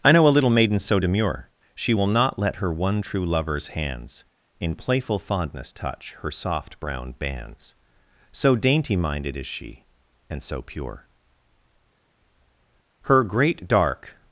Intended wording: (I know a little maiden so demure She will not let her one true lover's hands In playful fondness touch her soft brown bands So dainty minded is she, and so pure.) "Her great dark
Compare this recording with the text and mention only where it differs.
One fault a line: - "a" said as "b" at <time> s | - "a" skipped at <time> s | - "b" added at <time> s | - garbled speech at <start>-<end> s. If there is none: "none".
none